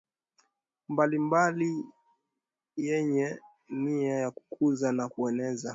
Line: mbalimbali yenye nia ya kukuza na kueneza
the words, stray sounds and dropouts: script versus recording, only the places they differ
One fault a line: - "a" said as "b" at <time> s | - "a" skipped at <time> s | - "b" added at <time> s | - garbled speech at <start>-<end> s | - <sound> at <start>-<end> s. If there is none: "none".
none